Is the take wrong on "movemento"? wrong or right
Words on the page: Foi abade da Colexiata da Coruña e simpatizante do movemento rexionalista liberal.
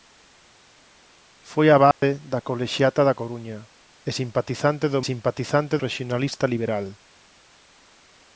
wrong